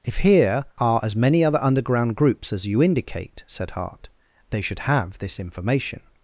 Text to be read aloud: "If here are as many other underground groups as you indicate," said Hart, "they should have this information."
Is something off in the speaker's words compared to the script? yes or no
no